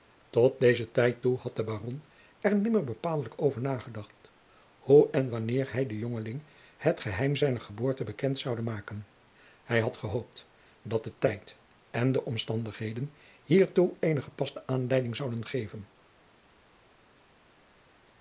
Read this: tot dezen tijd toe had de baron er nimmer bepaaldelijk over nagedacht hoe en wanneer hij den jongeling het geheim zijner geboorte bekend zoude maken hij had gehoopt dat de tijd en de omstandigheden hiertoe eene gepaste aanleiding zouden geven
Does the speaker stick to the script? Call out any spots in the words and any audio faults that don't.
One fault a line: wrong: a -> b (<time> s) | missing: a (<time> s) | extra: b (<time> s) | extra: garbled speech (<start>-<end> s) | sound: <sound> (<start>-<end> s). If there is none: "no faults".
no faults